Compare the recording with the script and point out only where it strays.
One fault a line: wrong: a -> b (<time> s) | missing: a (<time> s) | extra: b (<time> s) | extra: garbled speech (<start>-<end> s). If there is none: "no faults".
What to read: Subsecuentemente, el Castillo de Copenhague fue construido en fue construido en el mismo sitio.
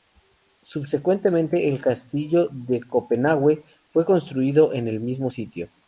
missing: fue construido en (4.9 s)